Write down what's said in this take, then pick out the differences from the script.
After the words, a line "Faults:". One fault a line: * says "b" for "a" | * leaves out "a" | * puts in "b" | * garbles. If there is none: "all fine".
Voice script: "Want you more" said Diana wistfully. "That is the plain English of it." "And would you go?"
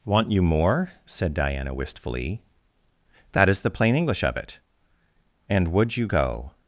"Want you more" said Diana wistfully. "That is the plain English of it." "And would you go?"
Faults:
all fine